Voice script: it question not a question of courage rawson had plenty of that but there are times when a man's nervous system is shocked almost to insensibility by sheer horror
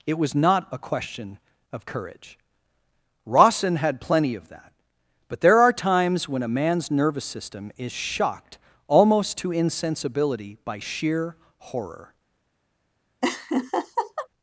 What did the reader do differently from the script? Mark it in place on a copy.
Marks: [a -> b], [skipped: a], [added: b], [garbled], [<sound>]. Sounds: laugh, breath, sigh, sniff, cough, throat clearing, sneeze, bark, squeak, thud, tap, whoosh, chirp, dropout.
it [question -> was] not a question of courage rawson had plenty of that but there are times when a man's nervous system is shocked almost to insensibility by sheer horror [laugh]